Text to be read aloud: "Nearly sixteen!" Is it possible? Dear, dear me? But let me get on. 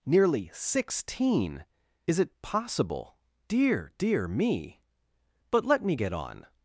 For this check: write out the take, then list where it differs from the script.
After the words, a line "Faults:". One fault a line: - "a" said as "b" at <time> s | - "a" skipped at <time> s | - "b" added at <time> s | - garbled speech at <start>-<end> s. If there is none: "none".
"Nearly sixteen!" Is it possible? Dear, dear me? But let me get on.
Faults:
none